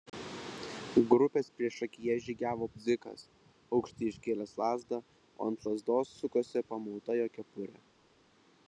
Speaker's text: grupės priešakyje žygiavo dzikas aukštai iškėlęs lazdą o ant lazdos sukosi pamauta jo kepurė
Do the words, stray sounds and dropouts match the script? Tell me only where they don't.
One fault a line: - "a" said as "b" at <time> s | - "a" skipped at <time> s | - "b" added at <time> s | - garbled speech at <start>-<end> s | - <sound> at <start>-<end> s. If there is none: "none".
none